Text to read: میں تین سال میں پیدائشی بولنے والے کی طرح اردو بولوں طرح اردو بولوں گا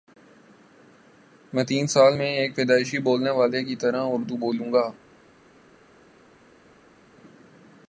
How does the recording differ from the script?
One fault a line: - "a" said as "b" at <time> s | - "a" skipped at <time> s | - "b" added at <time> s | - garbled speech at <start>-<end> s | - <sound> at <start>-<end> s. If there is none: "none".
- "ایک" added at 2.3 s
- "طرح اردو بولوں" skipped at 4.7 s